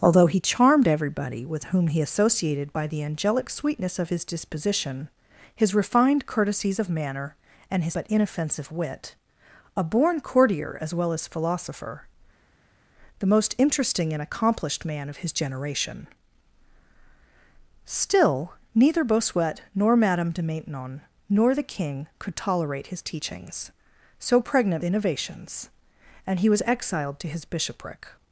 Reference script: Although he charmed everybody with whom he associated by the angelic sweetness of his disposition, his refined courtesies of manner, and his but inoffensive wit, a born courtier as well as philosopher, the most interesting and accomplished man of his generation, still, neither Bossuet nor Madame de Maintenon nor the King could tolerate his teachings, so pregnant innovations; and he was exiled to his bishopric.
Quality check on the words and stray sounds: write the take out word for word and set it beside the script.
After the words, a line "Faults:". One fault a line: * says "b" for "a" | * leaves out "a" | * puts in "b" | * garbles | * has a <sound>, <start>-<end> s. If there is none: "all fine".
Although he charmed everybody with whom he associated by the angelic sweetness of his disposition, his refined courtesies of manner, and his but inoffensive wit, a born courtier as well as philosopher, the most interesting and accomplished man of his generation, still, neither Bossuet nor Madame de Maintenon nor the King could tolerate his teachings, so pregnant innovations; and he was exiled to his bishopric.
Faults:
all fine